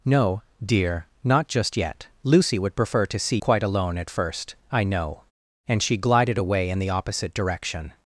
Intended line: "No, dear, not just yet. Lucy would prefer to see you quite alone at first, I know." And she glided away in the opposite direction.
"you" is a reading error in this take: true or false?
true